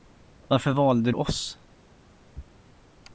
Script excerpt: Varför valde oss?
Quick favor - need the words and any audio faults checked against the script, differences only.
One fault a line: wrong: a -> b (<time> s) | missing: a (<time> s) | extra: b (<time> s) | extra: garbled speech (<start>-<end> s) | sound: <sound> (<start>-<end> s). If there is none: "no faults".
no faults